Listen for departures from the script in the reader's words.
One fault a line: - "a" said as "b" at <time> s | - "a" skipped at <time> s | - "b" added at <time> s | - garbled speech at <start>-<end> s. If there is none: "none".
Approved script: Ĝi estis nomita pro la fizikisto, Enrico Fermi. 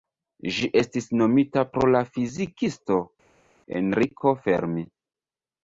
none